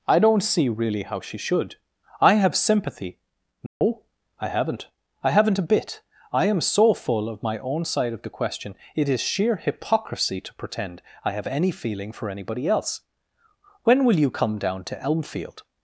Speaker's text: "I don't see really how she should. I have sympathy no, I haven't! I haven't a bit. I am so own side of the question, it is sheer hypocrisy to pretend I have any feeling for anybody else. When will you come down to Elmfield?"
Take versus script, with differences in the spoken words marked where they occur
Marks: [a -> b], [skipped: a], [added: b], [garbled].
"I don't see really how she should. I have sympathy no, I haven't! I haven't a bit. I am so [added: full of my] own side of the question, it is sheer hypocrisy to pretend I have any feeling for anybody else. When will you come down to Elmfield?"